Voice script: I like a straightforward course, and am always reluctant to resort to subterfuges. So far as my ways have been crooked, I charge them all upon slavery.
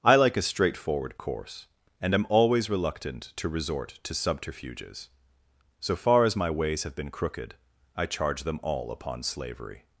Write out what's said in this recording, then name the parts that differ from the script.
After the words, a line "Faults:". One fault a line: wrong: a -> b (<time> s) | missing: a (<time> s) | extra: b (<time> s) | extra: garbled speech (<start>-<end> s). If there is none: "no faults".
I like a straightforward course, and am always reluctant to resort to subterfuges. So far as my ways have been crooked, I charge them all upon slavery.
Faults:
no faults